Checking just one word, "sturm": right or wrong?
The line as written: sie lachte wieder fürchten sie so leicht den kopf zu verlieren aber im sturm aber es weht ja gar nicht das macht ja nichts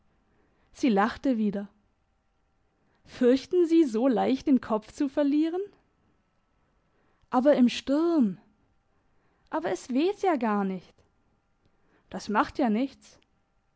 right